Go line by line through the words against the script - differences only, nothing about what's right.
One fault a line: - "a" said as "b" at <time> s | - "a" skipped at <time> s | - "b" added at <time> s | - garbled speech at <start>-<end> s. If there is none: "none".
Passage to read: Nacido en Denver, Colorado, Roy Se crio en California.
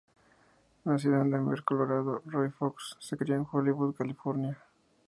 - "Fox" added at 2.5 s
- "Hollywood" added at 3.5 s